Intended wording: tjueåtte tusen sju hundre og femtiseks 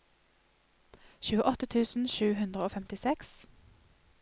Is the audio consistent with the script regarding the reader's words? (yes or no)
yes